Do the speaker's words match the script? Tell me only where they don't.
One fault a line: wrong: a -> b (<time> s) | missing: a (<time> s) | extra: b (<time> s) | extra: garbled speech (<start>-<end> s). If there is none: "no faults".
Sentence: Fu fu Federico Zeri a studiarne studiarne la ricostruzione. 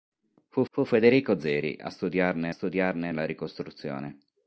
no faults